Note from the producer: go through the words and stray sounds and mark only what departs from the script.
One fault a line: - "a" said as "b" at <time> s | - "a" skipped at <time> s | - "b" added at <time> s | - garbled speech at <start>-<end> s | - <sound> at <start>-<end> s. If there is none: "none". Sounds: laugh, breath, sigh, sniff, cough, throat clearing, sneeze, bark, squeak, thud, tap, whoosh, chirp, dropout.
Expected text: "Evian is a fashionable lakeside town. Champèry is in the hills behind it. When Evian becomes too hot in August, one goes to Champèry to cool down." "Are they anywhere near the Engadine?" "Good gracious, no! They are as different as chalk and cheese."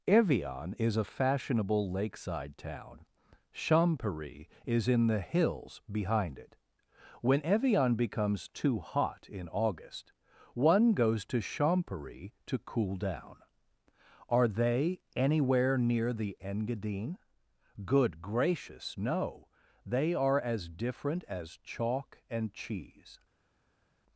none